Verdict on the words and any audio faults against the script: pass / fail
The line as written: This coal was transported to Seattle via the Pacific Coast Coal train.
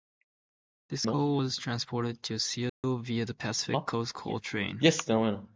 fail